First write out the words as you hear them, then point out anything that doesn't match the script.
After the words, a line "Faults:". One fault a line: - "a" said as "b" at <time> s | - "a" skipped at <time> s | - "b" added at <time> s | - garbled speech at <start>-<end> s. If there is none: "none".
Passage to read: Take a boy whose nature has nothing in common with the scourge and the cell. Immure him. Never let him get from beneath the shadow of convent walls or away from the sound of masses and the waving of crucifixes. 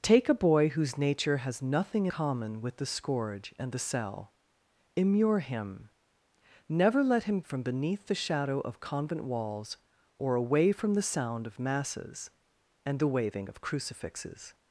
Take a boy whose nature has nothing common with the scourge and the cell. Immure him. Never let him from beneath the shadow of convent walls or away from the sound of masses and the waving of crucifixes.
Faults:
- "in" skipped at 2.1 s
- "get" skipped at 7.4 s